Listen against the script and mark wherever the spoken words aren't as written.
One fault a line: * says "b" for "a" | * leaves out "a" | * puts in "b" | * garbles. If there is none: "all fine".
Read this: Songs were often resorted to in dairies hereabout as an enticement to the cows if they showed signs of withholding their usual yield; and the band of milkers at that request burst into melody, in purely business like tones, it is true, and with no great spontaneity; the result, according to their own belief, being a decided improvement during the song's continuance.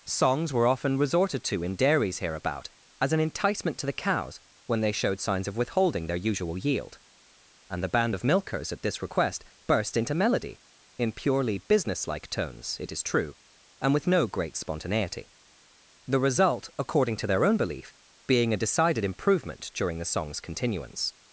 * says "when" for "if"
* says "this" for "that"